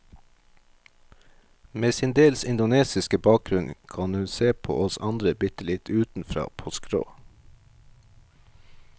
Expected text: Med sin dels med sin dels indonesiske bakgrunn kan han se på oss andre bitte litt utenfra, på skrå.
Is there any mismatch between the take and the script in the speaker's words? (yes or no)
yes